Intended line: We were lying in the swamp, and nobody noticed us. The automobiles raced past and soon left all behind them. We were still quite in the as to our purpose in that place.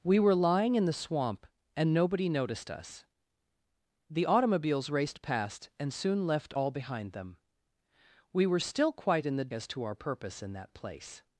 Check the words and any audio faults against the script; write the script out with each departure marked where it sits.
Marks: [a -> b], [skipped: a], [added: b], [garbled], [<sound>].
We were lying in the swamp, and nobody noticed us. The automobiles raced past and soon left all behind them. We were still quite in the as to our purpose in that place.